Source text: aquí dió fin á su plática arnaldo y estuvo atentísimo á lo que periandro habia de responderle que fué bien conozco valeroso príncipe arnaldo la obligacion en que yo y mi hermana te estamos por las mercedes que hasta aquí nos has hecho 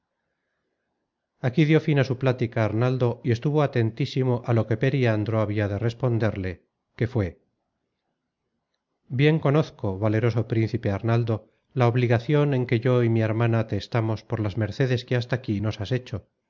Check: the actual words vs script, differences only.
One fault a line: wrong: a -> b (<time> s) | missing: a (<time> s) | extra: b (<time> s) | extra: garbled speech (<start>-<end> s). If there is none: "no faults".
no faults